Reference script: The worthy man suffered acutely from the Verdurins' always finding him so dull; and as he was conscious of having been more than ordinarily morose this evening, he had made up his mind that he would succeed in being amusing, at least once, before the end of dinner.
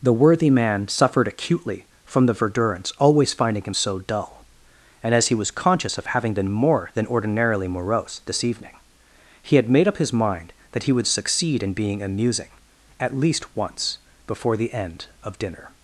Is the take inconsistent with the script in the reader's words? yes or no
no